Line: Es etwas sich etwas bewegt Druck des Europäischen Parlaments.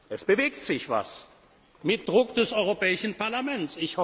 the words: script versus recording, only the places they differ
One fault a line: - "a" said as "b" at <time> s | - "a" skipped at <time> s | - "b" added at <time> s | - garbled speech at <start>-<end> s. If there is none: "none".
- "etwas" said as "bewegt" at 0.2 s
- "bewegt" said as "mit" at 1.8 s